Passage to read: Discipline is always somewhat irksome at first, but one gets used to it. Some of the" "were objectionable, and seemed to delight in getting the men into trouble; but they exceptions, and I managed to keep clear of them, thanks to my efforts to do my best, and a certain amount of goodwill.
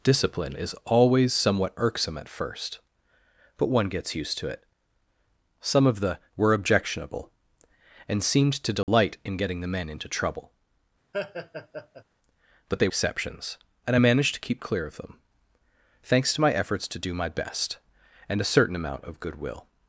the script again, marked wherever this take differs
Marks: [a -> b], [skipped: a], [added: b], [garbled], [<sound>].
Discipline is always somewhat irksome at first, but one gets used to it. Some of the" "were objectionable, and seemed to delight [dropout] in getting the men into trouble; [laugh] but they exceptions, and I managed to keep clear of them, thanks to my efforts to do my best, and a certain amount of goodwill.